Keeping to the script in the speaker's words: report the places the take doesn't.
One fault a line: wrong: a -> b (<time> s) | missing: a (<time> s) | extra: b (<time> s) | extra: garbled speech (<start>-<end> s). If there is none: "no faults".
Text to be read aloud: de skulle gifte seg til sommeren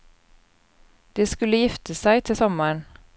no faults